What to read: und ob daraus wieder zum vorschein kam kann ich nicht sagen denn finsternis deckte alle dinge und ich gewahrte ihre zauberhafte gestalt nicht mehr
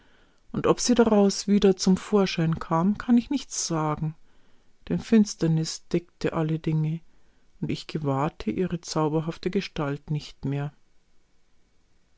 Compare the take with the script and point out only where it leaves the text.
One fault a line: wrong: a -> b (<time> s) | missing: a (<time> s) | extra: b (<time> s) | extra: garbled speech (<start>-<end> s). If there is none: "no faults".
extra: sie (0.8 s)